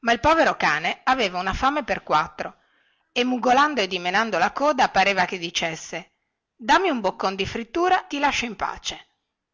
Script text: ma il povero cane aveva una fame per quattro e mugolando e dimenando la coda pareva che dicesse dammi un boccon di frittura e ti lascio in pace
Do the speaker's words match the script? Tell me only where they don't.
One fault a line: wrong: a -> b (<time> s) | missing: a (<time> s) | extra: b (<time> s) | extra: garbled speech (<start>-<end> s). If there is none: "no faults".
missing: e (8.1 s)